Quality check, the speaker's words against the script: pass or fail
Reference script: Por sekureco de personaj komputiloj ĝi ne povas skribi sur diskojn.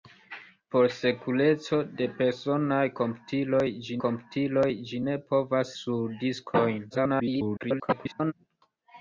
fail